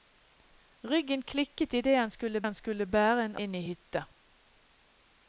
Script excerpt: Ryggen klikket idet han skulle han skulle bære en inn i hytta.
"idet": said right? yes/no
yes